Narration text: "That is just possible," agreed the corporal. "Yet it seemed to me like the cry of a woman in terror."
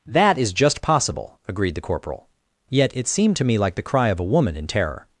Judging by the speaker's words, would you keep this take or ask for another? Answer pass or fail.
pass